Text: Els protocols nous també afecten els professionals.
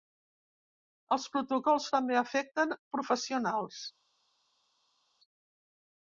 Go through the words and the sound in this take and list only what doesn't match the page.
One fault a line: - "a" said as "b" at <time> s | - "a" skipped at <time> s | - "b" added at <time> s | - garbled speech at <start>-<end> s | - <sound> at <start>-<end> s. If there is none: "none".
- "nous" skipped at 1.9 s
- "els" skipped at 2.8 s